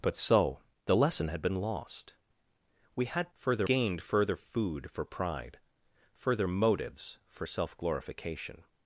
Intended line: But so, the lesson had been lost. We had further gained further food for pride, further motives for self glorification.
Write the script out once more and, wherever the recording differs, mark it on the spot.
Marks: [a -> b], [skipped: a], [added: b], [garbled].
But so, the lesson had been lost. We had further gained further food for pride, further motives for self glorification.